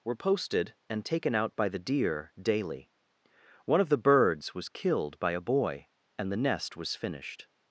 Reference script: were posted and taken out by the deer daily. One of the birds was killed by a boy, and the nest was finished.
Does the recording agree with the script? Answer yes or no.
yes